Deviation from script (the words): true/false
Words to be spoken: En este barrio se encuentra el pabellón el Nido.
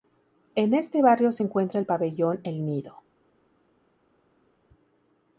false